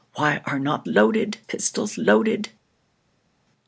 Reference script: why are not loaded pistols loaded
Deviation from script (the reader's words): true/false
false